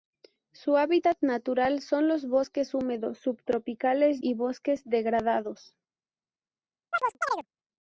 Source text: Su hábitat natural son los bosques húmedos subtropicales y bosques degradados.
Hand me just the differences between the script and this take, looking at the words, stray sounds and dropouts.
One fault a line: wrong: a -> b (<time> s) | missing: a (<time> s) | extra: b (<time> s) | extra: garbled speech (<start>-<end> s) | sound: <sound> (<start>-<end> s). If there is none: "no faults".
sound: chirp (6.9-7.5 s)